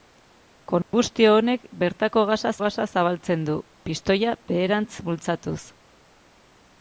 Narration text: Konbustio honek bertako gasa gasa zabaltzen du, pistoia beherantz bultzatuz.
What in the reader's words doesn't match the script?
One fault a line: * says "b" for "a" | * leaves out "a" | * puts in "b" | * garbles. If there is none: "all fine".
all fine